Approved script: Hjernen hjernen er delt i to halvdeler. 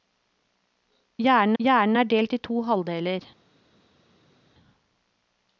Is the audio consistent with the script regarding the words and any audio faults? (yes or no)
yes